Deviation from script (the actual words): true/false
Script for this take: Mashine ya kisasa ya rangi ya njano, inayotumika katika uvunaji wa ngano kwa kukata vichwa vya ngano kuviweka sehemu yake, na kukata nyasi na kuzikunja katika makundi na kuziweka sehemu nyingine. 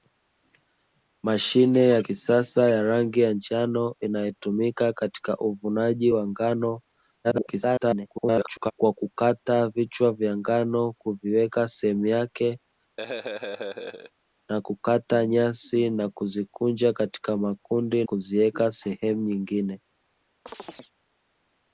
true